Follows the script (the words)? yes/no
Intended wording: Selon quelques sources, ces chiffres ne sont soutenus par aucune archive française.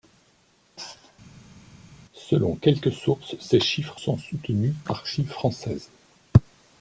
no